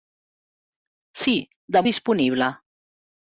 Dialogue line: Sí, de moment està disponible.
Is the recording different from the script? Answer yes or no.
yes